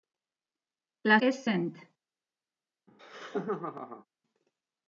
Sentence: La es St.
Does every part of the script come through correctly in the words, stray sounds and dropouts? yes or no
no